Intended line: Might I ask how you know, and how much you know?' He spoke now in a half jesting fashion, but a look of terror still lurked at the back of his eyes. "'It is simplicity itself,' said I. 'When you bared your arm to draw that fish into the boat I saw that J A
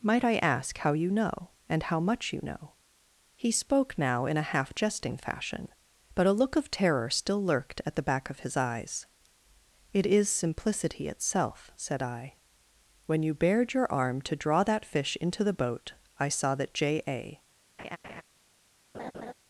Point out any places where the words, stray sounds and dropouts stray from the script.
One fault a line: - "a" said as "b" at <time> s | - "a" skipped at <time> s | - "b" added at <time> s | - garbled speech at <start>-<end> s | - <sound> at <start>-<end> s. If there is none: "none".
- laugh at 17.8-18.2 s
- laugh at 18.9-19.3 s